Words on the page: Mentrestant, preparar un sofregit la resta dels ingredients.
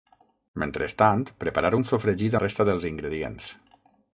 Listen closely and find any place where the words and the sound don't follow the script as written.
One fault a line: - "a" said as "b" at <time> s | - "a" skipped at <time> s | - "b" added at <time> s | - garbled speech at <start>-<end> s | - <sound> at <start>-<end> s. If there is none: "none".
none